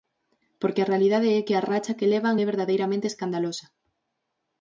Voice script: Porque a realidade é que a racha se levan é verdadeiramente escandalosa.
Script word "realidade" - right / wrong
right